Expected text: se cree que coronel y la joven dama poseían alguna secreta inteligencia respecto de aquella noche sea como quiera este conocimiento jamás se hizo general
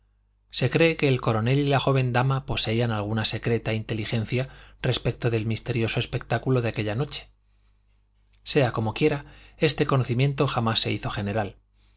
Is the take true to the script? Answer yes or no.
no